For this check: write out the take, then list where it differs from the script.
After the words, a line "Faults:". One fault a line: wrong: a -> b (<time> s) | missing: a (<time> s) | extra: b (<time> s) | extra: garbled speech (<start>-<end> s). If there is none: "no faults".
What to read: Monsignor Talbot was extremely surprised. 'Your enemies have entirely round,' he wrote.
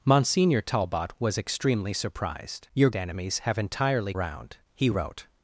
Monsignor Talbot was extremely surprised. 'Your enemies have entirely round,' he wrote.
Faults:
no faults